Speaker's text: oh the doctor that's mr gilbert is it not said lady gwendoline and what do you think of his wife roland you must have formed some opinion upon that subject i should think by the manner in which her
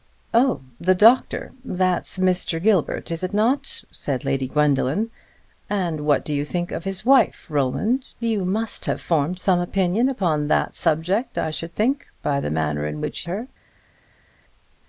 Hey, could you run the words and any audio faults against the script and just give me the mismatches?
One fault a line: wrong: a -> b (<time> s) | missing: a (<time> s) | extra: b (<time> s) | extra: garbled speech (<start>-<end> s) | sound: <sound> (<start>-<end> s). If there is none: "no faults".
no faults